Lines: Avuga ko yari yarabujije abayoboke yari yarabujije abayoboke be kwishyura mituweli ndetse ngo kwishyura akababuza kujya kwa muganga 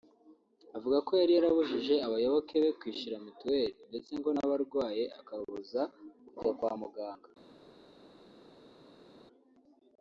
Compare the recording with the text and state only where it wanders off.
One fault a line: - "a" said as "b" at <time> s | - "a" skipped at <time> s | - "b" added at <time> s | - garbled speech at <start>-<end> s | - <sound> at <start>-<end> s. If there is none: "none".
- "yari yarabujije abayoboke" skipped at 2.5 s
- "kwishyura" said as "n'abarwaye" at 4.3 s